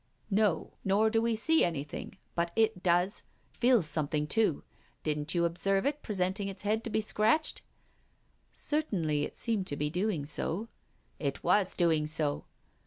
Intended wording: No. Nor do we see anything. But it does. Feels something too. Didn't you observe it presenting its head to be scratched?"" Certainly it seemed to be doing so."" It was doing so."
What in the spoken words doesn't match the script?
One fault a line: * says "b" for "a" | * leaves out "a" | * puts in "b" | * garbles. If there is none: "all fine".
all fine